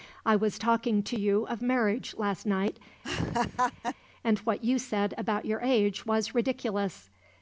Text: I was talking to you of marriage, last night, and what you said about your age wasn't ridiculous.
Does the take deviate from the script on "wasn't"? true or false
true